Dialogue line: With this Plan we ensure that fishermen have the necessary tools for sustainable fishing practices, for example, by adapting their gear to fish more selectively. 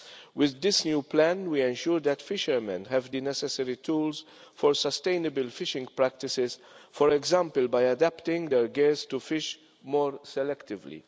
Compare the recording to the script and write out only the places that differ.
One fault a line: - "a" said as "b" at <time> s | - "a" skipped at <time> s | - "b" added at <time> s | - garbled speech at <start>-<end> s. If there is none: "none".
- "new" added at 0.8 s